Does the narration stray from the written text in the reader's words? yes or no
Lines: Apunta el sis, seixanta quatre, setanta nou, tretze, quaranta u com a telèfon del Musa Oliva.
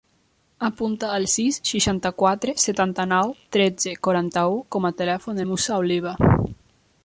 no